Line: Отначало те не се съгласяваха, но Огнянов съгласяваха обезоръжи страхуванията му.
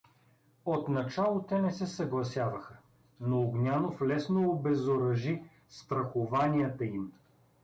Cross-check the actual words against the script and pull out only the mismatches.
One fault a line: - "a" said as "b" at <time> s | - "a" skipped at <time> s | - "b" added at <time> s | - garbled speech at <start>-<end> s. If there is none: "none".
- "съгласяваха" said as "лесно" at 4.0 s
- "му" said as "им" at 6.8 s